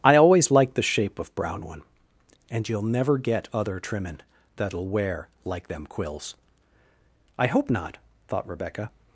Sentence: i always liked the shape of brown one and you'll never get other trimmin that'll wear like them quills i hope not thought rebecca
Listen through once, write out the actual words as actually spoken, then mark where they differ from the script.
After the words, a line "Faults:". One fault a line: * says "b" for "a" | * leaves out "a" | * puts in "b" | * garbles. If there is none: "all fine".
i always liked the shape of brown one and you'll never get other trimmin that'll wear like them quills i hope not thought rebecca
Faults:
all fine